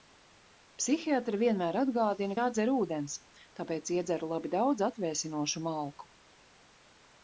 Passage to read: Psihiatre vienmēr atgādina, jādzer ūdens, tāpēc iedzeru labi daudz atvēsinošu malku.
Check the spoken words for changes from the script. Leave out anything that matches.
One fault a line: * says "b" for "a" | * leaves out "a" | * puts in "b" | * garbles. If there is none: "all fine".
all fine